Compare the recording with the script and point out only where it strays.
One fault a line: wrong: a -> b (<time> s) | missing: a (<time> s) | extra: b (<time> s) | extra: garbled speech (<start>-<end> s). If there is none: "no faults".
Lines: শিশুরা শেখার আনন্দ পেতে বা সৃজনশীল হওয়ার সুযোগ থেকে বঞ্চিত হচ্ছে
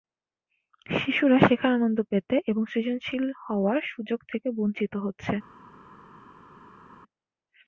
wrong: বা -> এবং (2.5 s)